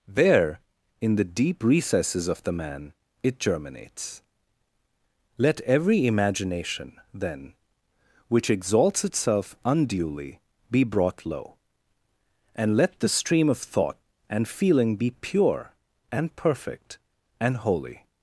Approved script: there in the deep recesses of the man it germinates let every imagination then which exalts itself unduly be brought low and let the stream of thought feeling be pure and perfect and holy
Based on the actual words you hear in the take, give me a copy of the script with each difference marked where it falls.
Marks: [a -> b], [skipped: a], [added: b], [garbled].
there in the deep recesses of the man it germinates let every imagination then which exalts itself unduly be brought low and let the stream of thought [added: and] feeling be pure and perfect and holy